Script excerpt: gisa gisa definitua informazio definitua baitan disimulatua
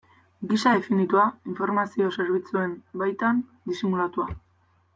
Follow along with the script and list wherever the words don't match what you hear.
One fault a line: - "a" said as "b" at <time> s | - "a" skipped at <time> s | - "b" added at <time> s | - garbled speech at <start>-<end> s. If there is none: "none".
- "gisa" skipped at 0.7 s
- "definitua" said as "zerbitzuen" at 2.2 s